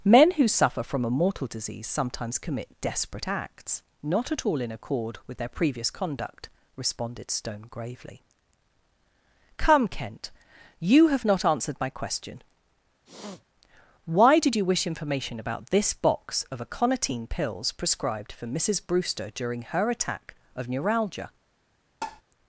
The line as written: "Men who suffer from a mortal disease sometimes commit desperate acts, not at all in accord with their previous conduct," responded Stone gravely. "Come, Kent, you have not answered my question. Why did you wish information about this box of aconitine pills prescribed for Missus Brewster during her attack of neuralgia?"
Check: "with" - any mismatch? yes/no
no